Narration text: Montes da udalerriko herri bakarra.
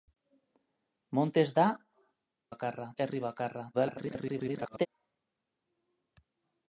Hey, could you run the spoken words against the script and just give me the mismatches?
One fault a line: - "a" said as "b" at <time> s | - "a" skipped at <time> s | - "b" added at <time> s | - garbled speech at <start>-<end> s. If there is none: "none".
- "udalerriko" said as "bakarra" at 2.5 s
- garbled speech at 3.7-4.9 s